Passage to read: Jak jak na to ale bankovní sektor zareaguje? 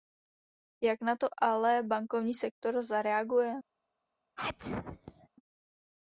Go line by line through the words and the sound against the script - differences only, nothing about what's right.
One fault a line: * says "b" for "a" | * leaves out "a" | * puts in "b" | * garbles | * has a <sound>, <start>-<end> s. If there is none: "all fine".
* leaves out "jak"
* has a sneeze, 4.4-5.3 s